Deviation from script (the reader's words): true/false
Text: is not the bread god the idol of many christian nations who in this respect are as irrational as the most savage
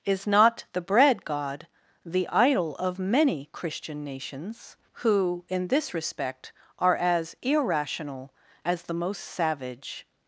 false